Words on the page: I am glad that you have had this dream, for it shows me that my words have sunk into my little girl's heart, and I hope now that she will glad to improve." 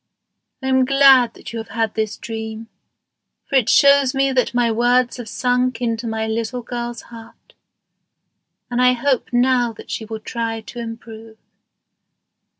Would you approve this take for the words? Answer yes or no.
no